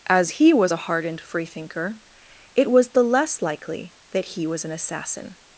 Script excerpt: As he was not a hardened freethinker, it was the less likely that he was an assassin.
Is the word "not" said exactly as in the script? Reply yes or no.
no